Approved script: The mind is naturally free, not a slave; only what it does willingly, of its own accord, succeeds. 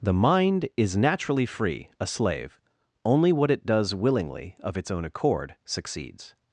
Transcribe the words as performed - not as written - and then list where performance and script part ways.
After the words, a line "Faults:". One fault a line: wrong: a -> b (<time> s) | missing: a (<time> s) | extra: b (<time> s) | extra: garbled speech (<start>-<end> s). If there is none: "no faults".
The mind is naturally free, a slave; only what it does willingly, of its own accord, succeeds.
Faults:
missing: not (1.9 s)